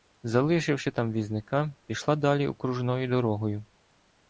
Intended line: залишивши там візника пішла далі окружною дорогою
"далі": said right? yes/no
yes